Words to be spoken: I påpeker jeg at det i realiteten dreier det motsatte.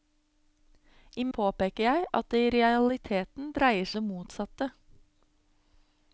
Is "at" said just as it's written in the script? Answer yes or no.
yes